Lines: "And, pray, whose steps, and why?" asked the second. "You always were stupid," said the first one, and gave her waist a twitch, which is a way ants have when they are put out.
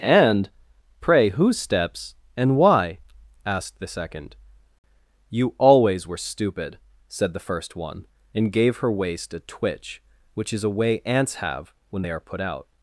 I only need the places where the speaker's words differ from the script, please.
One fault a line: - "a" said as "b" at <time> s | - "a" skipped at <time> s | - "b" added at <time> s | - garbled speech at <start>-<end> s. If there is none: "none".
none